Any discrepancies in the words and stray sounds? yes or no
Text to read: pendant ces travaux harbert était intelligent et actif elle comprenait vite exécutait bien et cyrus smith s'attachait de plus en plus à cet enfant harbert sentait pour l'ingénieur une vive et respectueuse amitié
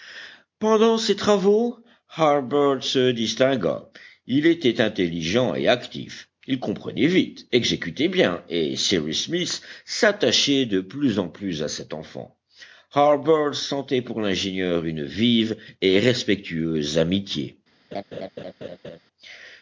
yes